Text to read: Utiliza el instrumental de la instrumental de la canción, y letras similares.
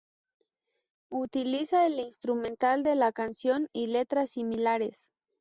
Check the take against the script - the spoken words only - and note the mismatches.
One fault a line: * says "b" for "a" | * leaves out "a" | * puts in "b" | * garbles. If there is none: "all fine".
* leaves out "instrumental de la"